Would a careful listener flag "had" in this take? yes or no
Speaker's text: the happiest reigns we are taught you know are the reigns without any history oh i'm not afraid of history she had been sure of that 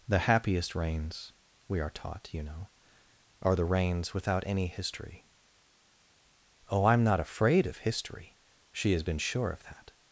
yes